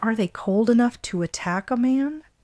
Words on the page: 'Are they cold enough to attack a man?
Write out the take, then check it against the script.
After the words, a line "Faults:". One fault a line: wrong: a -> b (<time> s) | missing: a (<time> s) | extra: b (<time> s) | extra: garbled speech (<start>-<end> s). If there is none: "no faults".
'Are they cold enough to attack a man?
Faults:
no faults